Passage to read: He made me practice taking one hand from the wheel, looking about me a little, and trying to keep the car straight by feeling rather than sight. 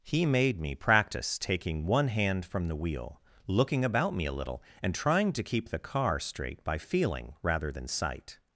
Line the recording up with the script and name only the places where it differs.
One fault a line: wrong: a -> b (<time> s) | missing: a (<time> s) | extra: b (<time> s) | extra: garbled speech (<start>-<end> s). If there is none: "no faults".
no faults